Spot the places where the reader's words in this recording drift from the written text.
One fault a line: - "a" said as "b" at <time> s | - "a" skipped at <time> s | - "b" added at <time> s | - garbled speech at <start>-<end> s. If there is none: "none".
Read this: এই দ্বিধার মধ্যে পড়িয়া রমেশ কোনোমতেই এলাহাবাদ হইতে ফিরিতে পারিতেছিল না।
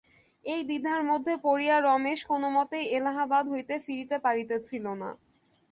none